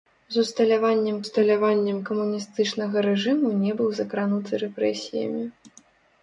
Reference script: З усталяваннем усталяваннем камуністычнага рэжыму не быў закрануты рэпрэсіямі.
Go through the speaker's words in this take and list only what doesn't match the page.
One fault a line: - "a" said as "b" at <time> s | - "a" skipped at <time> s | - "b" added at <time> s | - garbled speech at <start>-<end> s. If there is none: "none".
none